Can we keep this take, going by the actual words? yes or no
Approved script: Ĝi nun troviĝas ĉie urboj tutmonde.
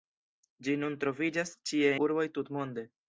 yes